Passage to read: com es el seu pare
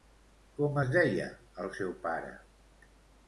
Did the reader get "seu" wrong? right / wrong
right